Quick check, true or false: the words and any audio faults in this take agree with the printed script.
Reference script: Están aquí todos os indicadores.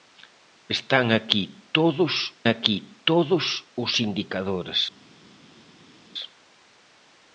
false